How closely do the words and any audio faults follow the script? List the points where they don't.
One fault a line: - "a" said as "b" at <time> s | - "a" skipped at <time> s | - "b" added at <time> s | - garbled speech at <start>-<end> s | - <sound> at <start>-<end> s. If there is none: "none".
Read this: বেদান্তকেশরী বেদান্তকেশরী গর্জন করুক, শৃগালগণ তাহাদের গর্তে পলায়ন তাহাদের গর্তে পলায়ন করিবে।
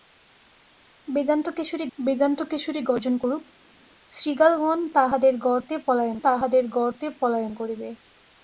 none